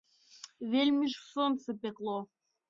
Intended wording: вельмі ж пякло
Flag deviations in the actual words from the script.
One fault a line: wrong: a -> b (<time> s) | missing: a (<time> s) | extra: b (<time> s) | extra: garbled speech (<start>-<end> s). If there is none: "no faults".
extra: сонца (1.3 s)